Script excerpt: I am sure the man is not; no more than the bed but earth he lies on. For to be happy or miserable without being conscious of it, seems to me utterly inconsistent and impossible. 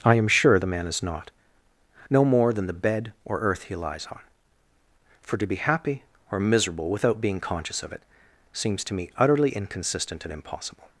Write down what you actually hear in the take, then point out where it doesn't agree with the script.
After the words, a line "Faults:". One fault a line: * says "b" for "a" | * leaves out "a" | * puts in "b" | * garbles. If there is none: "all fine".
I am sure the man is not; no more than the bed or earth he lies on. For to be happy or miserable without being conscious of it, seems to me utterly inconsistent and impossible.
Faults:
* says "or" for "but"